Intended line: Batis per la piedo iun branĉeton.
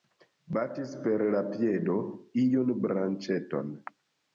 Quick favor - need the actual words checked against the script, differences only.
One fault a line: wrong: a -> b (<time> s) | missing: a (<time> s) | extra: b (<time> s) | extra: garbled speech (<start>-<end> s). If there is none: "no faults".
no faults